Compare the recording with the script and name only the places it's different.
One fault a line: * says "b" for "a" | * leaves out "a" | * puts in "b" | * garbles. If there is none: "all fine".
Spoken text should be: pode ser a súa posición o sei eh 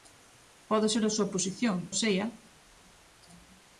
all fine